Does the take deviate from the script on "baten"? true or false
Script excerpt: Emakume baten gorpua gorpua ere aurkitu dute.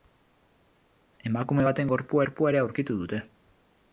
false